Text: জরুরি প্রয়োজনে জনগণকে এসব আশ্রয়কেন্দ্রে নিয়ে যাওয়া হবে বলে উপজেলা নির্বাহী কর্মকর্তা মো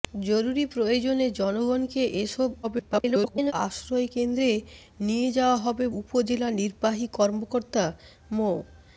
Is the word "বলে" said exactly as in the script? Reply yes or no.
no